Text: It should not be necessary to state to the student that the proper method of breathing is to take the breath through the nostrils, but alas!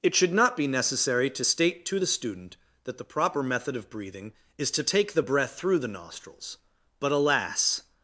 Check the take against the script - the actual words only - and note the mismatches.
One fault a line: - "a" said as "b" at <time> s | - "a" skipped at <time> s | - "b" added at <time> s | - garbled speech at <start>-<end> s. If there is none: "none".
none